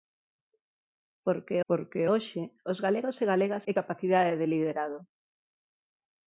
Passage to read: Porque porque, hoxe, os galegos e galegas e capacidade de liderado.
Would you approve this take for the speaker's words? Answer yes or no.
yes